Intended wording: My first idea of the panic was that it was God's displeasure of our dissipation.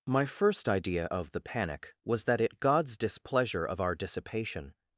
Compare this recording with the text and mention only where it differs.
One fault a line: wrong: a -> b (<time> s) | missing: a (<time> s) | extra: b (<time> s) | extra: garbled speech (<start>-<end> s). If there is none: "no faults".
missing: was (2.6 s)